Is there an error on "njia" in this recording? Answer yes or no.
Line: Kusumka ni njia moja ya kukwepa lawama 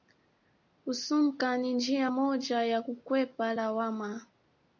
no